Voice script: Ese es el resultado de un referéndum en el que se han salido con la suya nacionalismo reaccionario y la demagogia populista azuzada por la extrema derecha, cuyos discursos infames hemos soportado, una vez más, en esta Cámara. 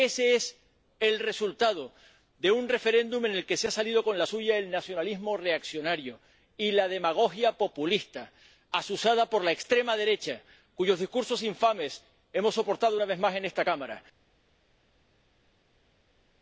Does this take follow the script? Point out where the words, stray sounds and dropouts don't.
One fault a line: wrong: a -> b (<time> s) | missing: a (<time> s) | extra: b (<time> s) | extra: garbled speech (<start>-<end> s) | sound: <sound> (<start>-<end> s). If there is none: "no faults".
extra: el (4.6 s)